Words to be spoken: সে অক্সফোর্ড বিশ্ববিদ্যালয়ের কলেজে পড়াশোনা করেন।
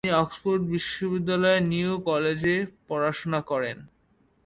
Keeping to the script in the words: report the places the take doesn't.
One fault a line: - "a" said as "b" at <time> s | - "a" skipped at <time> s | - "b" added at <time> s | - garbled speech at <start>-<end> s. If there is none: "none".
- "সে" said as "তিনি" at 0.0 s
- "নিউ" added at 1.7 s